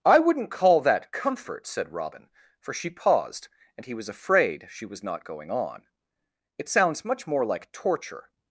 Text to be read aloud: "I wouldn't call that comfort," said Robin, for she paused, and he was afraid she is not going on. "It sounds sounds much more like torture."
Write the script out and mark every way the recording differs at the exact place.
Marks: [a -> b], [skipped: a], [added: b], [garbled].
"I wouldn't call that comfort," said Robin, for she paused, and he was afraid she [is -> was] not going on. "It sounds [skipped: sounds] much more like torture."